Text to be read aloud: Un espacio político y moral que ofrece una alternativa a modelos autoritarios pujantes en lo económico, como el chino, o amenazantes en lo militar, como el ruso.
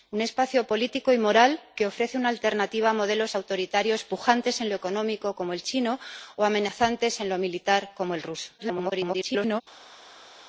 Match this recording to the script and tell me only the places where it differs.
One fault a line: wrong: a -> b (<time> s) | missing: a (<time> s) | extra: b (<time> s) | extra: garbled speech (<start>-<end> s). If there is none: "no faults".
extra: garbled speech (8.6-9.6 s)